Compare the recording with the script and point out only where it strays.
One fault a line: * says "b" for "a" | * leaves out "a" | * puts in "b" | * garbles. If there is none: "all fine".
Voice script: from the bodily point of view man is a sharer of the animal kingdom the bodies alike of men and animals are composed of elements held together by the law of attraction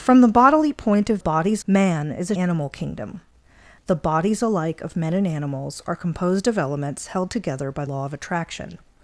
* says "bodies" for "view"
* leaves out "sharer of the"
* leaves out "the"